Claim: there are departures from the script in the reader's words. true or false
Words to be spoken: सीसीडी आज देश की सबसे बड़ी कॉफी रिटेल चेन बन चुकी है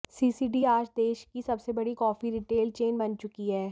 false